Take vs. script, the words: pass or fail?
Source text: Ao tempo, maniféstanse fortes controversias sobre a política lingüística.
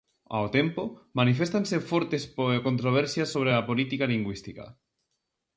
pass